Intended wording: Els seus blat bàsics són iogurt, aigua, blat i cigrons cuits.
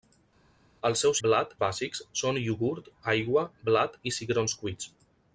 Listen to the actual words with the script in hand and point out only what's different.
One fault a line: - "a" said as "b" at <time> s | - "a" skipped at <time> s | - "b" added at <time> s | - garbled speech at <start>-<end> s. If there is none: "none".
none